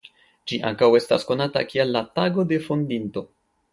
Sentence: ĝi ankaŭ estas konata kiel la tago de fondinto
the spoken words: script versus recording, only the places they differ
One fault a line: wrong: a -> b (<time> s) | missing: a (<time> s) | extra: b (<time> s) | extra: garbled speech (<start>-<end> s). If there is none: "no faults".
no faults